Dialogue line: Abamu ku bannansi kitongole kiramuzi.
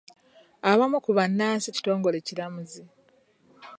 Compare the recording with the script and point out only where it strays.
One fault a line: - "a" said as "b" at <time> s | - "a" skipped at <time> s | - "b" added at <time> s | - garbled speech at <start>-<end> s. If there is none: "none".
none